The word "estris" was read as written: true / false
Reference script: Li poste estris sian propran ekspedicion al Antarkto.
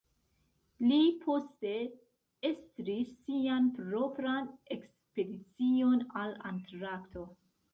true